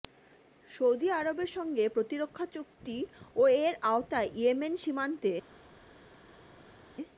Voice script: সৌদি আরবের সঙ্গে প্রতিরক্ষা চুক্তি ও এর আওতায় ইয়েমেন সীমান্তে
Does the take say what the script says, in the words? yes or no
yes